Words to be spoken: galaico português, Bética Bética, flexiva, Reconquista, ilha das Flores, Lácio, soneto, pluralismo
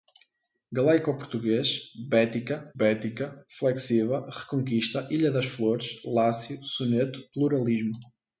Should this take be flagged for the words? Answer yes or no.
no